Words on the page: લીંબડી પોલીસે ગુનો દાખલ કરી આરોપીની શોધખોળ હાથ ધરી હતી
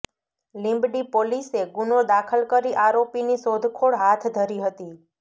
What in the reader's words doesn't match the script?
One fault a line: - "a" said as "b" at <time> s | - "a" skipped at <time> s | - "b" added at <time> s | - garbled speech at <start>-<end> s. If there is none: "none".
none